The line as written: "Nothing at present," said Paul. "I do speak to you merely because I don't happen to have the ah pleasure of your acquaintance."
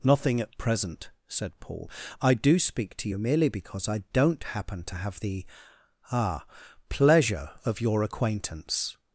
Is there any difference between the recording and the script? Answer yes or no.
no